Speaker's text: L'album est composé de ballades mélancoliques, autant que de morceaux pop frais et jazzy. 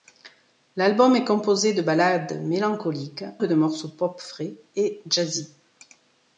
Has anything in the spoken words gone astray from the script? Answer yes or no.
yes